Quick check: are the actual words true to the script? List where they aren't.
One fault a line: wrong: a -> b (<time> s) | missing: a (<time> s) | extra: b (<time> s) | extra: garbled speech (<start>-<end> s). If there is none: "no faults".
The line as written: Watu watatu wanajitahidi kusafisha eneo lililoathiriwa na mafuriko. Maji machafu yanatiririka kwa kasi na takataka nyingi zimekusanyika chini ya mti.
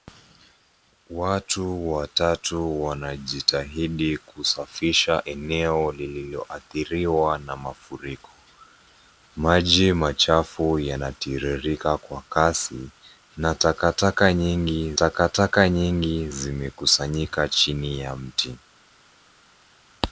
extra: takataka nyingi (14.9 s)